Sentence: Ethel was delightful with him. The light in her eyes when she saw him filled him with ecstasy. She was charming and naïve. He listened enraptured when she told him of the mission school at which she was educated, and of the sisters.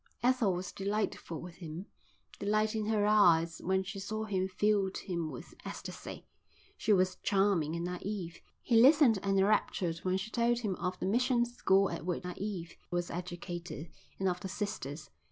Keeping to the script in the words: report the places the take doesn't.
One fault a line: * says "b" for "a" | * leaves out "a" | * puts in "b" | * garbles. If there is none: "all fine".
* says "naïve" for "she"